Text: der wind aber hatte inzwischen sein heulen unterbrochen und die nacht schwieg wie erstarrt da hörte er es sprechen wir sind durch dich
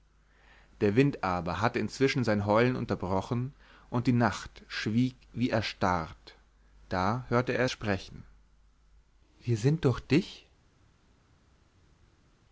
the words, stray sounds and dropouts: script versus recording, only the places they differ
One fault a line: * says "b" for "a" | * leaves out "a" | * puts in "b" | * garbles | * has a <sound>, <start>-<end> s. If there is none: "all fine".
* leaves out "es"